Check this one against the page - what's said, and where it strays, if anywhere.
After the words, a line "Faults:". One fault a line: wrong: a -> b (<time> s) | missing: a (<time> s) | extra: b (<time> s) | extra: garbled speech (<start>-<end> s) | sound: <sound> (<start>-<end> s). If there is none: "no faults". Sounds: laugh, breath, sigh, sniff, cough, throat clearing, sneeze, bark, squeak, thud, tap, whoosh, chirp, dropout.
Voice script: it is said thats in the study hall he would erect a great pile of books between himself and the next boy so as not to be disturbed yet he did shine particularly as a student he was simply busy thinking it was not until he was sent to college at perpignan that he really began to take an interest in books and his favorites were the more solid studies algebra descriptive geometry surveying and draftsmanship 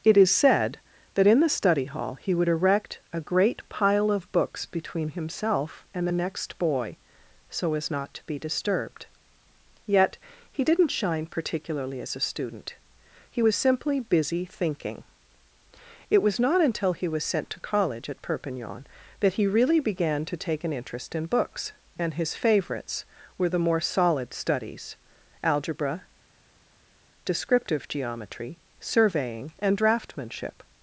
it is said that in the study hall he would erect a great pile of books between himself and the next boy so as not to be disturbed yet he didn't shine particularly as a student he was simply busy thinking it was not until he was sent to college at perpignan that he really began to take an interest in books and his favorites were the more solid studies algebra descriptive geometry surveying and draftsmanship
Faults:
wrong: thats -> that (1.1 s)
wrong: did -> didn't (10.6 s)